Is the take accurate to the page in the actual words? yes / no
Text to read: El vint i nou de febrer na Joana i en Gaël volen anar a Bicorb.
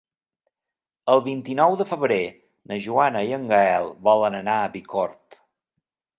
yes